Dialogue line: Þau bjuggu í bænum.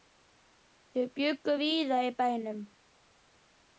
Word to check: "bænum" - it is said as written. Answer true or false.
true